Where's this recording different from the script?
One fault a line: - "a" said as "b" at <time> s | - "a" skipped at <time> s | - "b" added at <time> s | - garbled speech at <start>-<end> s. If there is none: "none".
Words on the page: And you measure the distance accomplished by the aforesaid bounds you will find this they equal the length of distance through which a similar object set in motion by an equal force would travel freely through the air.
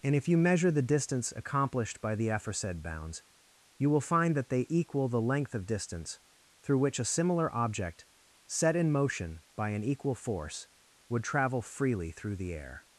- "if" added at 0.1 s
- "this" said as "that" at 4.4 s